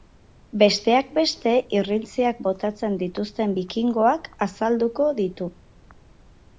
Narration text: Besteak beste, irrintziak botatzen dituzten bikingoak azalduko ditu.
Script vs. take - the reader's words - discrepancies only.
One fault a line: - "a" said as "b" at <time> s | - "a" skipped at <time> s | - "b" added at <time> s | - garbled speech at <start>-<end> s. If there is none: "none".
none